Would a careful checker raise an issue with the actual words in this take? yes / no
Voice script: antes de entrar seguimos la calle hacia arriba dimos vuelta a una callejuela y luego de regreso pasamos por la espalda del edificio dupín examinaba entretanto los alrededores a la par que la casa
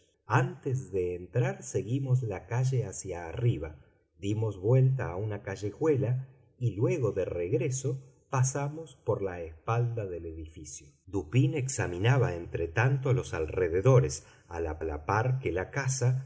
yes